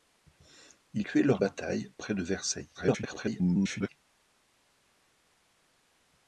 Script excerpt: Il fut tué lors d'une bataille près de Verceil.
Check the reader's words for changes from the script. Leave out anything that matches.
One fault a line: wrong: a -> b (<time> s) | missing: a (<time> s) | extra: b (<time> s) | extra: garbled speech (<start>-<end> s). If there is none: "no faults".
missing: fut (1.1 s)
missing: d'une (1.4 s)
extra: garbled speech (2.7-3.9 s)